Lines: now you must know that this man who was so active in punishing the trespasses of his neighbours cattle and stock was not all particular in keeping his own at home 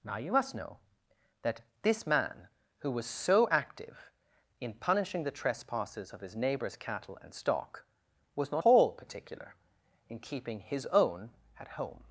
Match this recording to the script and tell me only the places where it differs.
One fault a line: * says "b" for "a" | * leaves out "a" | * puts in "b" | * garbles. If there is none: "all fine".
all fine